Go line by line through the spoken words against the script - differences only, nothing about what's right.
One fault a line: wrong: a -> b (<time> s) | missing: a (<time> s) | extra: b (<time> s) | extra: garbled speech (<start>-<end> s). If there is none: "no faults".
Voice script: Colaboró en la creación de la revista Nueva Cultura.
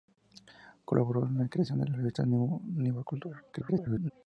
extra: garbled speech (3.5-4.1 s)